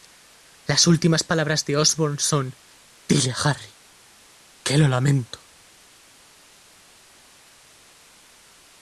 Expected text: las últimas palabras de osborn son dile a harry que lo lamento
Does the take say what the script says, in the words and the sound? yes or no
yes